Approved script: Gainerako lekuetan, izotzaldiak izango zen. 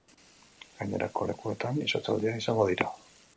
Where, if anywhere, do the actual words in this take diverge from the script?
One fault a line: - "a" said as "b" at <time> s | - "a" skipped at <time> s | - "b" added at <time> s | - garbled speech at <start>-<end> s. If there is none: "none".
- "zen" said as "dira" at 2.7 s